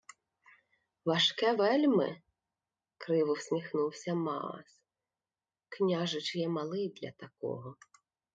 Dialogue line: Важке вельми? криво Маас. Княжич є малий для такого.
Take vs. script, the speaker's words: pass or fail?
fail